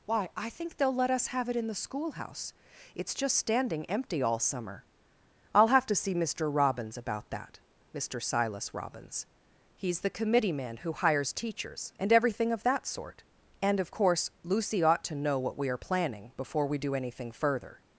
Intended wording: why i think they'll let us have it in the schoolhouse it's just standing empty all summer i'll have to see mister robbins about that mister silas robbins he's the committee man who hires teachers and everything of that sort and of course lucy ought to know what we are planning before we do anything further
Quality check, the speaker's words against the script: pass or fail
pass